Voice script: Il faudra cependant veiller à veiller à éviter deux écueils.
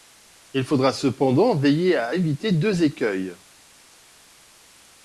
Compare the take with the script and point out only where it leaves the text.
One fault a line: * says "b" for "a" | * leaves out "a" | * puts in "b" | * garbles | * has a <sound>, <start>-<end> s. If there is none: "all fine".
* leaves out "veiller à"